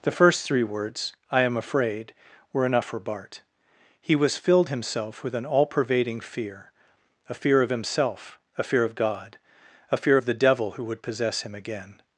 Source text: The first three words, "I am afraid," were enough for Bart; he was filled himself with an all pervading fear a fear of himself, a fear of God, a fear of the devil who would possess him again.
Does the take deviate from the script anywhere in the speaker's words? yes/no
no